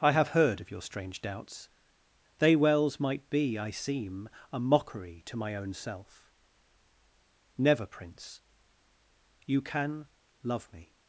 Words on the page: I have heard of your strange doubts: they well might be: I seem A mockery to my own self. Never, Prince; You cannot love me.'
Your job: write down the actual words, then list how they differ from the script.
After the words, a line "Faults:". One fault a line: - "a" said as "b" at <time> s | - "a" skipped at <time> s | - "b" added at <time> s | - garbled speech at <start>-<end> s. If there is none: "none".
I have heard of your strange doubts: they wells might be: I seem A mockery to my own self. Never, Prince; You can love me.'
Faults:
- "well" said as "wells" at 2.5 s
- "cannot" said as "can" at 9.6 s